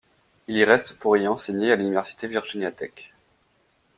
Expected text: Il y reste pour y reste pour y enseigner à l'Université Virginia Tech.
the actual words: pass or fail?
fail